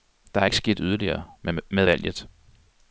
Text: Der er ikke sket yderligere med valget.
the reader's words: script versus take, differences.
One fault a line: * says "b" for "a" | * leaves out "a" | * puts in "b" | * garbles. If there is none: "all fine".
all fine